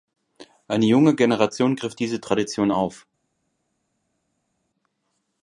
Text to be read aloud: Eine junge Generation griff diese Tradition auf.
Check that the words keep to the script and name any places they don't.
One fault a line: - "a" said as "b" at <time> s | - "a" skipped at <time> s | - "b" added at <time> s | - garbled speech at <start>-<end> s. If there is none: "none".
none